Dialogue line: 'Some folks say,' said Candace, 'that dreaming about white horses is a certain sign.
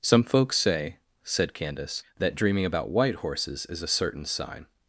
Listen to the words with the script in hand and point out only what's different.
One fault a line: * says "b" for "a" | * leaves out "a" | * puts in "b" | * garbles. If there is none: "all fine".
all fine